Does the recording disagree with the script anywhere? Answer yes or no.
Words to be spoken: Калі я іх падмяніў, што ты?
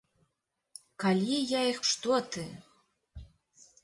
yes